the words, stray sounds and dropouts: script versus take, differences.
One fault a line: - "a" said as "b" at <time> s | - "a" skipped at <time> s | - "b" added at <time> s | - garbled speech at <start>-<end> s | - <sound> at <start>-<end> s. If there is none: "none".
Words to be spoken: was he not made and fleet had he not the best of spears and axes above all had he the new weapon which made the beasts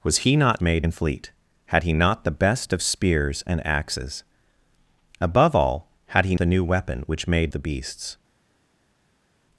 none